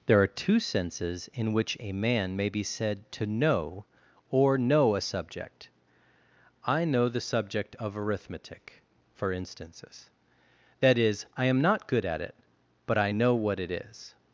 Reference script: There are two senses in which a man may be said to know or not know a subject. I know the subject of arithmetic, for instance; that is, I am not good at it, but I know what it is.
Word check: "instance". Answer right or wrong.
wrong